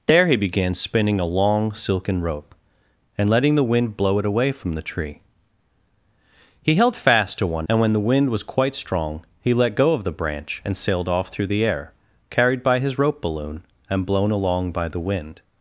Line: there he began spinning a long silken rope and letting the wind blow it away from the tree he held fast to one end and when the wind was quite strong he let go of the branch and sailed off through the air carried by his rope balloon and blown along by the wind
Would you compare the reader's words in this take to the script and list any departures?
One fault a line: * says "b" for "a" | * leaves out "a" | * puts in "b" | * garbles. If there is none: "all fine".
* leaves out "end"